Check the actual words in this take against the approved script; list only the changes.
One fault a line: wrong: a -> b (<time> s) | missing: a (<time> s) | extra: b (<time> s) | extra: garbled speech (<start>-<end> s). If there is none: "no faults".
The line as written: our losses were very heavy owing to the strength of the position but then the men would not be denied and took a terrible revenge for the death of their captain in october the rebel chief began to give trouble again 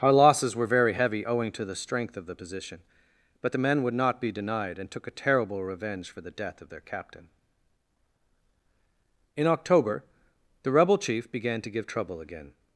missing: then (3.5 s)